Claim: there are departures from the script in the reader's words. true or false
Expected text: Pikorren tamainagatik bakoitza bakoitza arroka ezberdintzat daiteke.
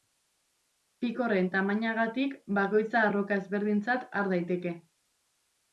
true